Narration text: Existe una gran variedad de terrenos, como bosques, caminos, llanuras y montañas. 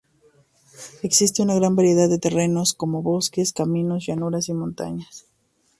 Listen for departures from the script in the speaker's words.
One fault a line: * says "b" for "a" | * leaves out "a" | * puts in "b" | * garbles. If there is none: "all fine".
all fine